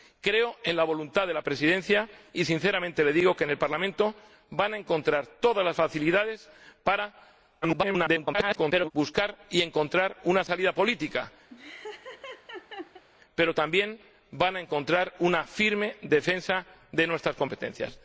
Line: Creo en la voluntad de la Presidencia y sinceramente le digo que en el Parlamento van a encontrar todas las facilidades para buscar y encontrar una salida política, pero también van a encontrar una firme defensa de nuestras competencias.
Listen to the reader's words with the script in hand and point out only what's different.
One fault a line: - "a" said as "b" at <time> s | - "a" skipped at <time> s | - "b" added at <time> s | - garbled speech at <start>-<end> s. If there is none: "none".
- garbled speech at 7.6-8.9 s